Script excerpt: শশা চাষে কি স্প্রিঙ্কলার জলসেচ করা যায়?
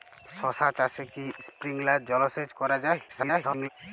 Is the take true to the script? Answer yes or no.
no